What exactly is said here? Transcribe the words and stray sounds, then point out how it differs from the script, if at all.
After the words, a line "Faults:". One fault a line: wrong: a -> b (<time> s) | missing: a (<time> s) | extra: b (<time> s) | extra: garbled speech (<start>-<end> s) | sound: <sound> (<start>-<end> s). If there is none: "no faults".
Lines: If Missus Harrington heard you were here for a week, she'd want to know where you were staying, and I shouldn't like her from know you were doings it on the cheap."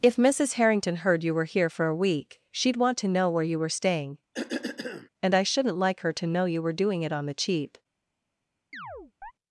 If Missus Harrington heard you were here for a week, she'd want to know where you were staying, and I shouldn't like her to know you were doing it on the cheap."
Faults:
sound: cough (4.3-5.1 s)
wrong: from -> to (6.1 s)
wrong: doings -> doing (6.7 s)
sound: chirp (8.7-9.3 s)